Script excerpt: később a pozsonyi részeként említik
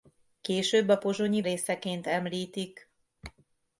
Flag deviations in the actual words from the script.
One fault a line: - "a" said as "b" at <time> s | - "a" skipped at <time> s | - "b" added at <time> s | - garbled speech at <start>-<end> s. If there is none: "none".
none